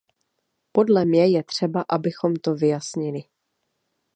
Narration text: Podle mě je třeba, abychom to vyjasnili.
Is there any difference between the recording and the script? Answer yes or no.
no